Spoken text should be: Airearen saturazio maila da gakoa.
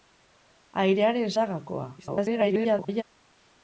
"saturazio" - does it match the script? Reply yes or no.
no